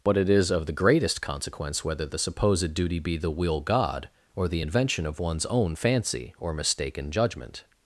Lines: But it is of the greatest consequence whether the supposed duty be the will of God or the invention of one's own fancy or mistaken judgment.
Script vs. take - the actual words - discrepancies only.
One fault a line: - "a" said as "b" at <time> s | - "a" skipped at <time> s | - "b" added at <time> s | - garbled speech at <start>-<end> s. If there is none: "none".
- "of" skipped at 3.6 s